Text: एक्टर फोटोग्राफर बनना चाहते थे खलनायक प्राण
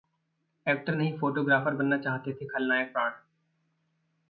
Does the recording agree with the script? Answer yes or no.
no